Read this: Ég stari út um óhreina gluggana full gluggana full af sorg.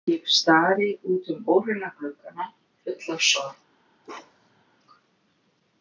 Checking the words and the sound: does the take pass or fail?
fail